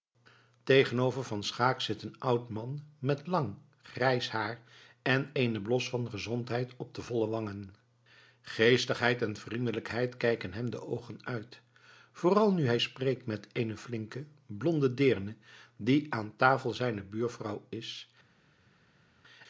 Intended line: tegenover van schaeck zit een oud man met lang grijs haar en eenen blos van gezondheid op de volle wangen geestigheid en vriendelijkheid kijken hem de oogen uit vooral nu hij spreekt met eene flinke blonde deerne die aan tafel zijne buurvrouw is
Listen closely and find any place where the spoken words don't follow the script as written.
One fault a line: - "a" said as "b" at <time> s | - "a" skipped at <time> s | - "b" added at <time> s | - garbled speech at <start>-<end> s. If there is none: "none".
none